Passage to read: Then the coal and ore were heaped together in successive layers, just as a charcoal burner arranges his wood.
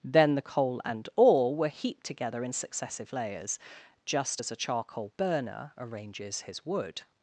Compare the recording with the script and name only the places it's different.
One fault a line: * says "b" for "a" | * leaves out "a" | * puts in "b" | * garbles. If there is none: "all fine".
all fine